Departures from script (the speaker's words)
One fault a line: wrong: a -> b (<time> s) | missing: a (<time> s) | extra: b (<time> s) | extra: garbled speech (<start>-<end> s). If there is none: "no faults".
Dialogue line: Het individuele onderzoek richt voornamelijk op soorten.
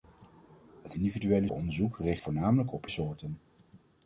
no faults